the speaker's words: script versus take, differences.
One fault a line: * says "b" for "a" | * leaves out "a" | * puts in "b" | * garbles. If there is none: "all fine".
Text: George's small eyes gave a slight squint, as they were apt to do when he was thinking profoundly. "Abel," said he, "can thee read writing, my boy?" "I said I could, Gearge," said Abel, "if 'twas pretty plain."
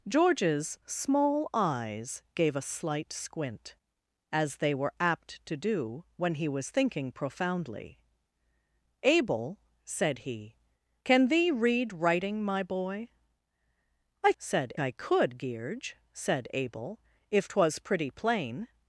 all fine